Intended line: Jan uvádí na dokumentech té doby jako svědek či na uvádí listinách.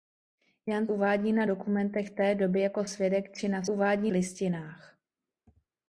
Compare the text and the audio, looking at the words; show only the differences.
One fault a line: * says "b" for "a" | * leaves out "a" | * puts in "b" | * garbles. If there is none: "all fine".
all fine